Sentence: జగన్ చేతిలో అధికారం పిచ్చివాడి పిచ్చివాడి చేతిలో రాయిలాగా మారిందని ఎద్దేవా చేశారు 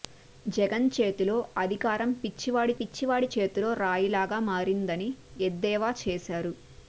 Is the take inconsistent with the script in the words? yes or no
no